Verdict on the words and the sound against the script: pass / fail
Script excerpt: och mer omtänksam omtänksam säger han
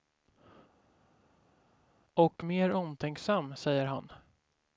fail